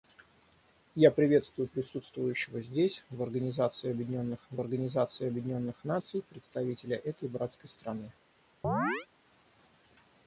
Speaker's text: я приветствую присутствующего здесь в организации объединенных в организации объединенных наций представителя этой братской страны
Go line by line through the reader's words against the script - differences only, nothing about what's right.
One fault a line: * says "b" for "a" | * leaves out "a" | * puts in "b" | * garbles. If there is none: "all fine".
all fine